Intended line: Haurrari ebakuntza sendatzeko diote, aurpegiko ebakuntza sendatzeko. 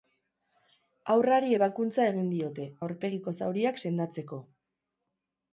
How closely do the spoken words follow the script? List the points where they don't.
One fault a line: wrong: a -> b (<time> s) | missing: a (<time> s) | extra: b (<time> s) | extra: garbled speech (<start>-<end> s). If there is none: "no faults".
wrong: sendatzeko -> egin (2.1 s)
wrong: ebakuntza -> zauriak (3.4 s)